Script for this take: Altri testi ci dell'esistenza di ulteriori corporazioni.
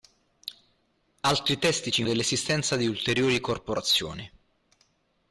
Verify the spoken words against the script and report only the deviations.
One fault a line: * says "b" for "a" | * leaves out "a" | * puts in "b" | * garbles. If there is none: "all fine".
all fine